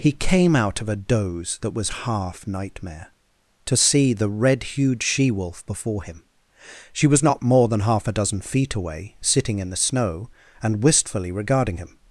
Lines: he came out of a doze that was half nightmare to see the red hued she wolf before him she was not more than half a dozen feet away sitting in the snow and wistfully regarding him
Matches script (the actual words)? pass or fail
pass